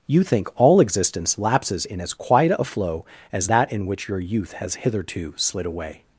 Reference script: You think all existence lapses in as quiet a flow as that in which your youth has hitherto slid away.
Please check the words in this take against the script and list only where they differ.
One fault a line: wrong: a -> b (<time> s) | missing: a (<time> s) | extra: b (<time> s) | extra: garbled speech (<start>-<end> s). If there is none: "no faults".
no faults